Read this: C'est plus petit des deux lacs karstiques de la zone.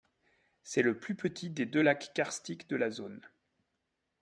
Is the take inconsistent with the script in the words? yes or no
yes